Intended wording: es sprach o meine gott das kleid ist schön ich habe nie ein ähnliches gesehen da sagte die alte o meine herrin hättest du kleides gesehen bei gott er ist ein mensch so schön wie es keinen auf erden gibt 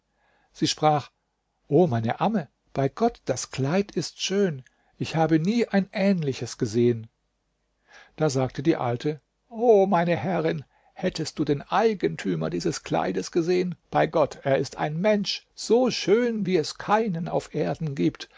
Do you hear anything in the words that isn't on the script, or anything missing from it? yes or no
yes